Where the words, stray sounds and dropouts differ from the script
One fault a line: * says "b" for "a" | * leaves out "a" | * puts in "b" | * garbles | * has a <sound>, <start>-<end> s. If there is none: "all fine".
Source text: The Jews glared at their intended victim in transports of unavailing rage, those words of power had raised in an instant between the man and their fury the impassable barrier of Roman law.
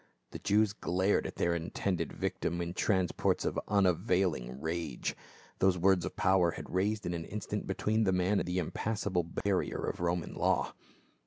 * leaves out "and their fury"
* has a dropout, 9.4-9.5 s